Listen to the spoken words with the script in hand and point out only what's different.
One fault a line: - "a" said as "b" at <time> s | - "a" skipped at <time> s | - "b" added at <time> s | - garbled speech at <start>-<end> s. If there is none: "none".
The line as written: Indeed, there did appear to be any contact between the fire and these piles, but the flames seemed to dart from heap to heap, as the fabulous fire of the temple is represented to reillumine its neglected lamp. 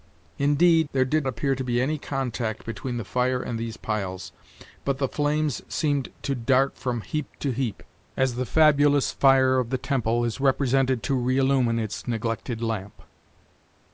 none